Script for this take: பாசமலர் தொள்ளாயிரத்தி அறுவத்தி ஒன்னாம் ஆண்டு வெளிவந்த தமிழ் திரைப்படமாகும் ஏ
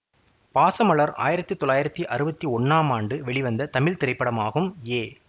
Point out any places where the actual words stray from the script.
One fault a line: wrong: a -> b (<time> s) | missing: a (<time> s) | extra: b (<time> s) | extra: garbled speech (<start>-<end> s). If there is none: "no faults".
extra: ஆயிரத்தி (1.2 s)